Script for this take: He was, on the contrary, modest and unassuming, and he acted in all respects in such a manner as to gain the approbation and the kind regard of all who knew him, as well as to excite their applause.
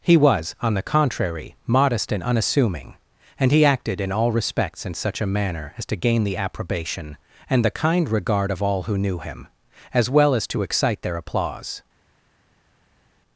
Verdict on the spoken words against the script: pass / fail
pass